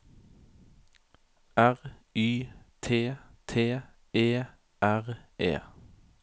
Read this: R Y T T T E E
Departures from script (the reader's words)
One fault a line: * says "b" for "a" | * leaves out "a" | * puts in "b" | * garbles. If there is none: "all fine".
* says "E R" for "T E"